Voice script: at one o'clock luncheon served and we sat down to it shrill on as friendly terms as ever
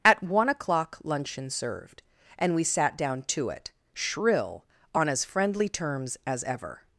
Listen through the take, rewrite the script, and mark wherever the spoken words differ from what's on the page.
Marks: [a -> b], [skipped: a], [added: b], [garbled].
at one o'clock luncheon served and we sat down to it shrill on as friendly terms as ever